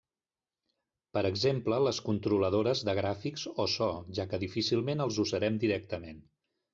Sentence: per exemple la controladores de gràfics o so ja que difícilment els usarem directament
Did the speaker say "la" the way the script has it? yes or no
no